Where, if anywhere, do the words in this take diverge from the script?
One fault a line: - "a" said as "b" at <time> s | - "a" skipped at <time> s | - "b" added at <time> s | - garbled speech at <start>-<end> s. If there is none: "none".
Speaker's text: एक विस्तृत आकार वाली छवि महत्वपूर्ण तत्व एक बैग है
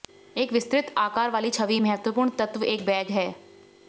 none